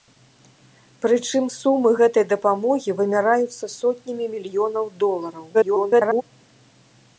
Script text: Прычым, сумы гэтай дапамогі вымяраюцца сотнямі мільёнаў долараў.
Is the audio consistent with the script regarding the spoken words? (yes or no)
no